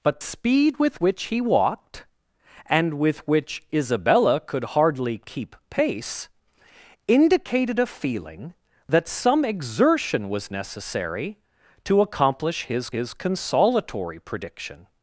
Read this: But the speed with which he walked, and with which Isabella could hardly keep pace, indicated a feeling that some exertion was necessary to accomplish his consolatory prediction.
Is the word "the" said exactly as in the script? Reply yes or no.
no